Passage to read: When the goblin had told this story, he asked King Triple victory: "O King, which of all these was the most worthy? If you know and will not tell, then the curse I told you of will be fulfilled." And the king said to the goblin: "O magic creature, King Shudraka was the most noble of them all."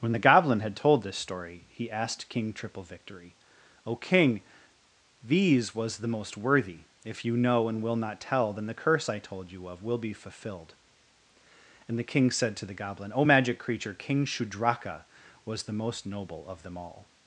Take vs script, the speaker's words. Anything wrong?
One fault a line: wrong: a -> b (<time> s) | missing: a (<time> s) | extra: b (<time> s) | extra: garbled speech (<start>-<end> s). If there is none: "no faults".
missing: which of all (4.4 s)